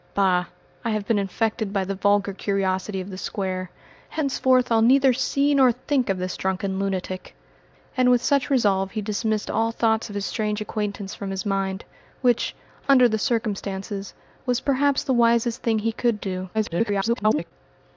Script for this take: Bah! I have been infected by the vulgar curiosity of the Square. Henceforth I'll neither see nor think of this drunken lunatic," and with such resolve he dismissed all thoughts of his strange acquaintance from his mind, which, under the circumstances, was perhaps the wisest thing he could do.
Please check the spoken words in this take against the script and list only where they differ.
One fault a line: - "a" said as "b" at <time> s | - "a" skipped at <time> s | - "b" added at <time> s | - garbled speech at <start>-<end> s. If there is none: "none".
- garbled speech at 16.5-17.5 s